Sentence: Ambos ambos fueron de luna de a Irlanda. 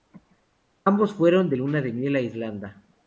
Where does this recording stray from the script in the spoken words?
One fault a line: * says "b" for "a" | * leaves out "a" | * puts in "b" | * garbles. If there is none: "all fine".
* leaves out "ambos"
* puts in "miel"